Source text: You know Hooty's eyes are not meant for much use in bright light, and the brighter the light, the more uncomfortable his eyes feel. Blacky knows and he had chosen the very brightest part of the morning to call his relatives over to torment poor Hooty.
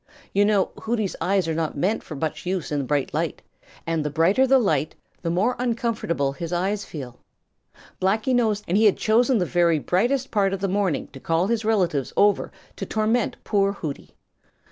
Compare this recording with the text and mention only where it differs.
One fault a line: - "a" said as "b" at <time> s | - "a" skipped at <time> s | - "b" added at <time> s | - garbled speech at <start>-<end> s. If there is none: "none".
none